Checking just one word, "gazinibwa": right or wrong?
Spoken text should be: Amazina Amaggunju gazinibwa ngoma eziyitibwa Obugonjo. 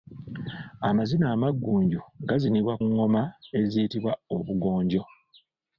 right